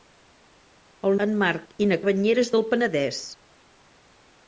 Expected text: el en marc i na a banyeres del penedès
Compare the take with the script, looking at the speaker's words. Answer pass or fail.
pass